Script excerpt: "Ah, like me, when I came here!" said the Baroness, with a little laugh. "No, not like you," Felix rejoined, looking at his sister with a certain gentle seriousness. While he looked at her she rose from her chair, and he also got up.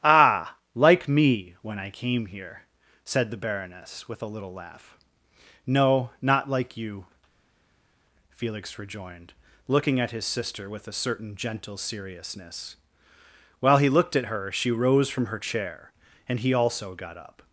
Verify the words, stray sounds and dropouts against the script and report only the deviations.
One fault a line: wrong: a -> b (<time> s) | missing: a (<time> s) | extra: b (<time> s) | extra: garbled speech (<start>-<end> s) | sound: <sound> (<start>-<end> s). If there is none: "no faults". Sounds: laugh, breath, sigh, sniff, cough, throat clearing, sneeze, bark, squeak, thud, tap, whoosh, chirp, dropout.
no faults